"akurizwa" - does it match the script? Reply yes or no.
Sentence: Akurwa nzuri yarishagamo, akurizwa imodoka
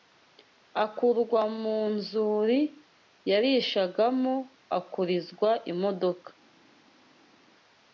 yes